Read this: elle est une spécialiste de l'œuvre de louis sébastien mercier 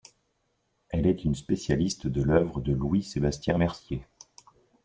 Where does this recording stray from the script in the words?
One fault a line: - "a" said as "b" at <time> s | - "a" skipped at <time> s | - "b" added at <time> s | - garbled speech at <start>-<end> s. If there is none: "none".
none